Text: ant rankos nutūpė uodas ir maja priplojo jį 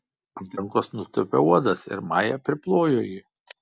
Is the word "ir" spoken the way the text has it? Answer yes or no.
yes